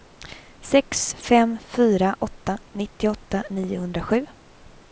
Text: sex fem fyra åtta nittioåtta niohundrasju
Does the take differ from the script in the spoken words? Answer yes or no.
no